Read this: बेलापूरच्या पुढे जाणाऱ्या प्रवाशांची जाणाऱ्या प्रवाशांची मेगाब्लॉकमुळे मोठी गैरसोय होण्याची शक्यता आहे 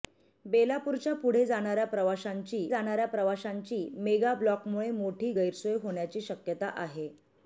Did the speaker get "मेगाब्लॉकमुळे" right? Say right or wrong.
right